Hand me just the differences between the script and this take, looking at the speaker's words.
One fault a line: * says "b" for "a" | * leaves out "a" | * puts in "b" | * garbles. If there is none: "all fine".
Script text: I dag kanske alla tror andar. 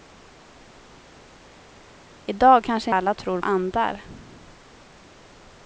all fine